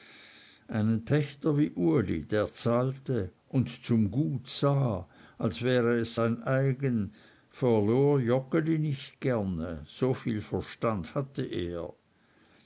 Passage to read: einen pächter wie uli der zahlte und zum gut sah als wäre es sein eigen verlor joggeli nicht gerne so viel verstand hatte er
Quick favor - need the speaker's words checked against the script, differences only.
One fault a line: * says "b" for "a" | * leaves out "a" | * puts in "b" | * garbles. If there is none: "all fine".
all fine